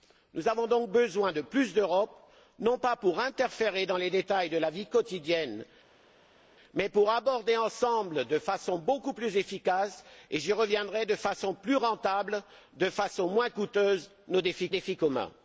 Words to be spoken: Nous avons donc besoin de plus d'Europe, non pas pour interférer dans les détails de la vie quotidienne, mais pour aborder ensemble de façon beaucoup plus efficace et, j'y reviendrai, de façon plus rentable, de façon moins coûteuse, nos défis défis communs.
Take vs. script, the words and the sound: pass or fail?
pass